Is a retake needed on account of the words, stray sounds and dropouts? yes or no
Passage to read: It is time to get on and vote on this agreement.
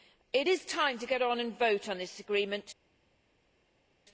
no